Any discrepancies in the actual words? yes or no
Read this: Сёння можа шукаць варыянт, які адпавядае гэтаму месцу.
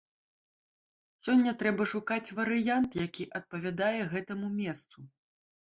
yes